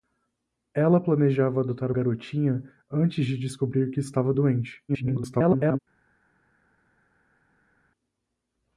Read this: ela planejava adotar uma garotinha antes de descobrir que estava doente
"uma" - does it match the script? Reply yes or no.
no